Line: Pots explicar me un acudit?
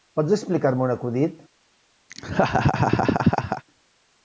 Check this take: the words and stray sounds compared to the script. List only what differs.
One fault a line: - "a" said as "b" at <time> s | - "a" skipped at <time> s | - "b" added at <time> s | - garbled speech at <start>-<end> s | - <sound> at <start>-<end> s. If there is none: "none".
- laugh at 2.1-3.6 s